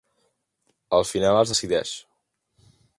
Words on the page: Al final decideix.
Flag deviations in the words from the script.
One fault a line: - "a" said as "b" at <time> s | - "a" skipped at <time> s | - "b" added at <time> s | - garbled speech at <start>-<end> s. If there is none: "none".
- "es" added at 1.4 s